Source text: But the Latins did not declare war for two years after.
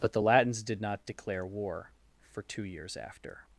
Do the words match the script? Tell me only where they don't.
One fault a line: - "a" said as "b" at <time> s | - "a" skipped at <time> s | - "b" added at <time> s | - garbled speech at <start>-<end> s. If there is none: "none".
none